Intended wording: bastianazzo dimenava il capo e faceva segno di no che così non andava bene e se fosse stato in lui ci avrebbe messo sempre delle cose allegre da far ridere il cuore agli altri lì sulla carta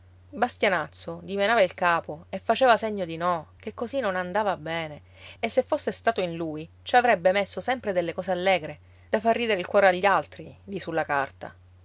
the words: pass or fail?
pass